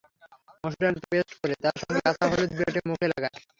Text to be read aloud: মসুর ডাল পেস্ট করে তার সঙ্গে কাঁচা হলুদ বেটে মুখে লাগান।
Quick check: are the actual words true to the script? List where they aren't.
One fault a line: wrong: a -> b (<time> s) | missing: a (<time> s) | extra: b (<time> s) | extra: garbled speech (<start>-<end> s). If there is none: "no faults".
no faults